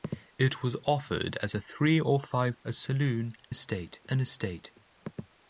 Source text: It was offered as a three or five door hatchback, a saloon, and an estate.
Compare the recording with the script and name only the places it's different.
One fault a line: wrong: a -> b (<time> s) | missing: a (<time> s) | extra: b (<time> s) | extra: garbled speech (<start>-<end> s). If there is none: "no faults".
missing: door hatchback (2.6 s)
wrong: and -> estate (3.5 s)